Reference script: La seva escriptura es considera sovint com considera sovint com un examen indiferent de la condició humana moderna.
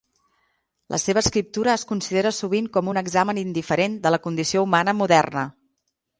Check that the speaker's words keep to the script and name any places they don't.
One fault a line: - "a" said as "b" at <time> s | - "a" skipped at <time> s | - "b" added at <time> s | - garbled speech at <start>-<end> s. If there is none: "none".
- "considera sovint com" skipped at 2.9 s